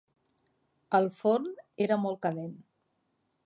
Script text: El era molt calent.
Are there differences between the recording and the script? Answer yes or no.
yes